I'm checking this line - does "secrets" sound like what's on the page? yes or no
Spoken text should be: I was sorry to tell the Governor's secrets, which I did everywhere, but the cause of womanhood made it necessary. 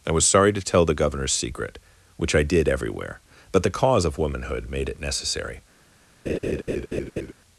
no